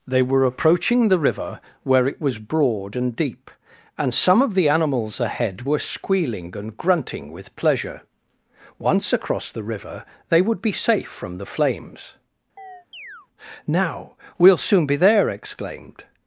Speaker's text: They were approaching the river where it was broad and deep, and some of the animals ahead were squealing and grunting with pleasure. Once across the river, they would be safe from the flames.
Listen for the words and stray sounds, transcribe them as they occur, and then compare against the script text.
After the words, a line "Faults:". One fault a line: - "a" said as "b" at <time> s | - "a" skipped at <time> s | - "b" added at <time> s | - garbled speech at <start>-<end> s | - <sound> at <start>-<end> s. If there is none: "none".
They were approaching the river where it was broad and deep, and some of the animals ahead were squealing and grunting with pleasure. Once across the river, they would be safe from the flames. "Now we'll soon be there!" exclaimed
Faults:
- chirp at 12.6-13.3 s
- "Now we'll soon be there exclaimed" added at 13.7 s